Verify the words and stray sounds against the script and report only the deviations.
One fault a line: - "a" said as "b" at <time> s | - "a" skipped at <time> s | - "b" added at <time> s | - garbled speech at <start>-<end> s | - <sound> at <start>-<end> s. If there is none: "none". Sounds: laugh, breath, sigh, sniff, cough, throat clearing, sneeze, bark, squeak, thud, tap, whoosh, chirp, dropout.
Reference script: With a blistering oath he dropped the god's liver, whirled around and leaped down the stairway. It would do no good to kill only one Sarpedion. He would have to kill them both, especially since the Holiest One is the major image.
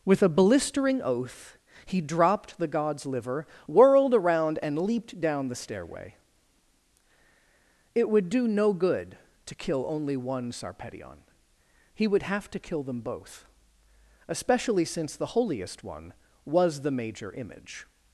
- "is" said as "was" at 16.5 s